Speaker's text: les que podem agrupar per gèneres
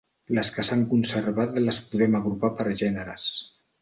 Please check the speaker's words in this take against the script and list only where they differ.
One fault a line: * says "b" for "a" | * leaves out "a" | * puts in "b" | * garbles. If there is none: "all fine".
* puts in "s'han conservat les"